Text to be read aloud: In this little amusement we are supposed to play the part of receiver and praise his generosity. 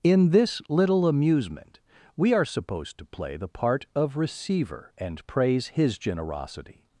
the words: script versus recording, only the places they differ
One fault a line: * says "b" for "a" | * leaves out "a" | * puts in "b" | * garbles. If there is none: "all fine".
all fine